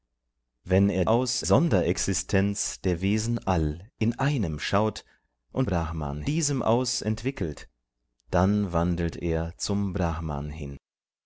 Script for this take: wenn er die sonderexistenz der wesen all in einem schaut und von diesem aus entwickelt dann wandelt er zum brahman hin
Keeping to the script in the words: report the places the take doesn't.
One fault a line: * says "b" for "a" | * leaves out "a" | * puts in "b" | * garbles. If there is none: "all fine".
* says "aus" for "die"
* says "brahman" for "von"